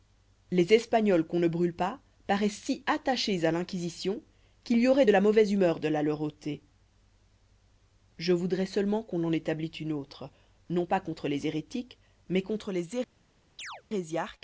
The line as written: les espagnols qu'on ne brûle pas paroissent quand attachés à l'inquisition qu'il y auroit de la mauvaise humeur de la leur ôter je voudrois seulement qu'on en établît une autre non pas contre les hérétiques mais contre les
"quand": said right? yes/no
no